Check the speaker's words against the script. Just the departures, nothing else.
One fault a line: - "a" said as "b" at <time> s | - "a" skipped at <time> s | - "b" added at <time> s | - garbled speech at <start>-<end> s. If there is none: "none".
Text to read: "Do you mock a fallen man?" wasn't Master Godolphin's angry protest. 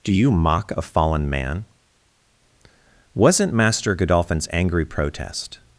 none